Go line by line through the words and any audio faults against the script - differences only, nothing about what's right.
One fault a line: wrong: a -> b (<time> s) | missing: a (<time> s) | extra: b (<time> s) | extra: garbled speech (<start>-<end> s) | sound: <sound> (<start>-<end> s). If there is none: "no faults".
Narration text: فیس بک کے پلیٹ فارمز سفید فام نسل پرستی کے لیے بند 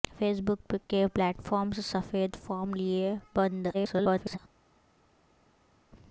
missing: نسل پرستی کے (2.7 s)
extra: garbled speech (3.7-4.4 s)